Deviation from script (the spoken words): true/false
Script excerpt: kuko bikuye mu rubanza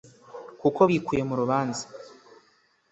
false